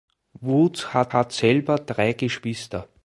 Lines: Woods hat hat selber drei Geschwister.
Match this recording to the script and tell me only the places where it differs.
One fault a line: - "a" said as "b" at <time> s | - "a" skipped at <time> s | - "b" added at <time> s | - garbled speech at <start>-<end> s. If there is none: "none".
none